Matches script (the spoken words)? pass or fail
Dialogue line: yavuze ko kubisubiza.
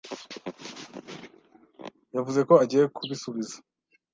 fail